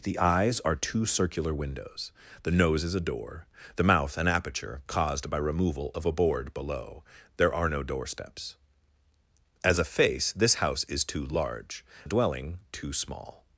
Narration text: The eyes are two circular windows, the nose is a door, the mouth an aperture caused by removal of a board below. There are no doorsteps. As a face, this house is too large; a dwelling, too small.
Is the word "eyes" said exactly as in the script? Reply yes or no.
yes